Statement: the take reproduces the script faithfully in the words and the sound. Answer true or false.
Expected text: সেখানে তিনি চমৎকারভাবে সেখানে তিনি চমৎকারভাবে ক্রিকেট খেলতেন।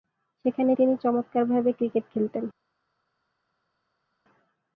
false